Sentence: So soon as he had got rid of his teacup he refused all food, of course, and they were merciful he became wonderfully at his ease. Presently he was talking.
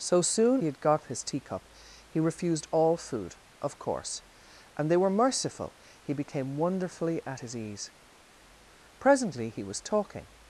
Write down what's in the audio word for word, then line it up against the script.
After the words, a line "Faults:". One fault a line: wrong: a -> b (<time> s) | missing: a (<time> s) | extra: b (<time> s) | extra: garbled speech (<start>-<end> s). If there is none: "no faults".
So soon he had got his teacup he refused all food, of course, and they were merciful he became wonderfully at his ease. Presently he was talking.
Faults:
missing: as (0.6 s)
missing: rid of (1.1 s)